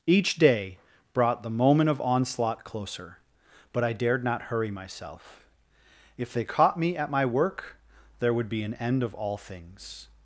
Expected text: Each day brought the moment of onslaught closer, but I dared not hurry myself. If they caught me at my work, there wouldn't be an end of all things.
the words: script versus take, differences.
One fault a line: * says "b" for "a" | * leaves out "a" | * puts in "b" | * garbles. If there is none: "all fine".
* says "would" for "wouldn't"